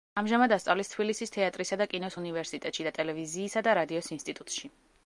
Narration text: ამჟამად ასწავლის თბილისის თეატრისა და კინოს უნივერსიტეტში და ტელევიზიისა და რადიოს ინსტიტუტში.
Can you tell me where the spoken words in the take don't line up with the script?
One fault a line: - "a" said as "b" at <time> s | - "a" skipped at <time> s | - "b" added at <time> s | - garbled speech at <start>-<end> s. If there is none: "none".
none